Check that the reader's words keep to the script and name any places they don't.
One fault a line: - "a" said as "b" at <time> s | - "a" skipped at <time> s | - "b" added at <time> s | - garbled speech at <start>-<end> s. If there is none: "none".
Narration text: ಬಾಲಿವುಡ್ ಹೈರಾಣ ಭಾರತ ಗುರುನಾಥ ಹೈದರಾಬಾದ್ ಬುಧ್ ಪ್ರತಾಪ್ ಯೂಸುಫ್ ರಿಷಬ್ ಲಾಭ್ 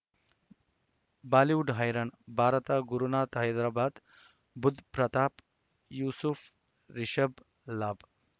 none